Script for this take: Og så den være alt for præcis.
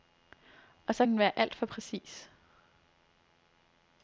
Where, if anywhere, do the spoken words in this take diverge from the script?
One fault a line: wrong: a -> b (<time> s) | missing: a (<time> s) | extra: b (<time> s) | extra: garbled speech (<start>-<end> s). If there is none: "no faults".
no faults